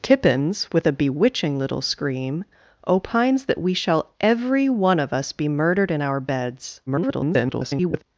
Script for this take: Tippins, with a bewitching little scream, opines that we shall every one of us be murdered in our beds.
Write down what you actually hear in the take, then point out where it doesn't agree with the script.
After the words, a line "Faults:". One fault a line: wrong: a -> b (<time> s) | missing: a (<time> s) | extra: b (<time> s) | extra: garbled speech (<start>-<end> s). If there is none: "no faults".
Tippins, with a bewitching little scream, opines that we shall every one of us be murdered in our beds. [garbled]
Faults:
extra: garbled speech (6.9-8.0 s)